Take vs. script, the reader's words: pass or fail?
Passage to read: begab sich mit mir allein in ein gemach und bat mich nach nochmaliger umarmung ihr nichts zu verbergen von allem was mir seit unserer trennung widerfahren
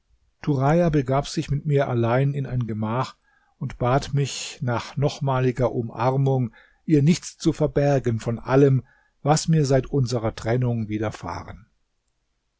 pass